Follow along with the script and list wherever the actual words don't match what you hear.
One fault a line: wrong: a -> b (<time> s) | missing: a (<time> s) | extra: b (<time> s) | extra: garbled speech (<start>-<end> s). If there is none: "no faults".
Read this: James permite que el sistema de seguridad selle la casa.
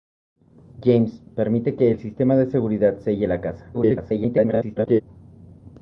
extra: garbled speech (3.7-5.0 s)